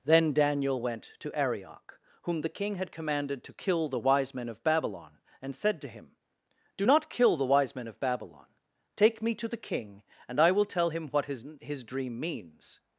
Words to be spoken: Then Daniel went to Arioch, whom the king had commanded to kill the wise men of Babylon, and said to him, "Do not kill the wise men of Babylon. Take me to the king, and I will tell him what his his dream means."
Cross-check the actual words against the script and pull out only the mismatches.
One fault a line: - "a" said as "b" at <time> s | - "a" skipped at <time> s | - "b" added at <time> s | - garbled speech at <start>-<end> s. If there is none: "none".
none